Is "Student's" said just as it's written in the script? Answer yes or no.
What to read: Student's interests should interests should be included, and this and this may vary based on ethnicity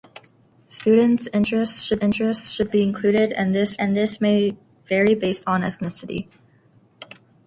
yes